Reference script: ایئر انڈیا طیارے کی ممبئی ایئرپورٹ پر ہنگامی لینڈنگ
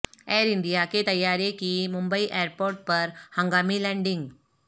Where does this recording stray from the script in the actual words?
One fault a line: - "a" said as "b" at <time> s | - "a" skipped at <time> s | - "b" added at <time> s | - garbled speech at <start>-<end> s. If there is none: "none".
- "کے" added at 0.9 s